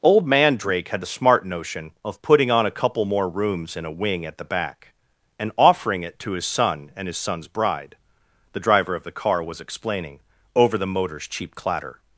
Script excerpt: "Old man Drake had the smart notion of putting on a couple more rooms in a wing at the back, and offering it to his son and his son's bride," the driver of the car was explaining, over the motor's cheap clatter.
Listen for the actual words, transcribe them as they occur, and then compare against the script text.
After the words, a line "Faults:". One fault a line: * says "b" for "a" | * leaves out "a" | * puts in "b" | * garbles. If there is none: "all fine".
"Old man Drake had the smart notion of putting on a couple more rooms in a wing at the back, and offering it to his son and his son's bride," the driver of the car was explaining, over the motor's cheap clatter.
Faults:
all fine